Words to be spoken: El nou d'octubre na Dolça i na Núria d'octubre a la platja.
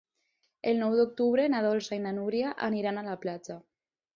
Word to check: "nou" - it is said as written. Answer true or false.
true